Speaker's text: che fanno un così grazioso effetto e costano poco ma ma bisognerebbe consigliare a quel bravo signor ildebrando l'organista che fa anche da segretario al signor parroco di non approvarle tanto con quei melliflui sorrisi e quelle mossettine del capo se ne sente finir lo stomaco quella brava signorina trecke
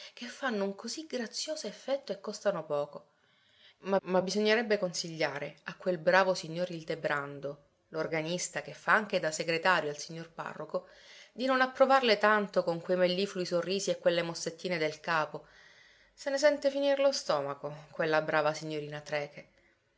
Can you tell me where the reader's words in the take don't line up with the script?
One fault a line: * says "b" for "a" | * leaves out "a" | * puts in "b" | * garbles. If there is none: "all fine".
all fine